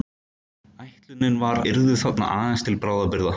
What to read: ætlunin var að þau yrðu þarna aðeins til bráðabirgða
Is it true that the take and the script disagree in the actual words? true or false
true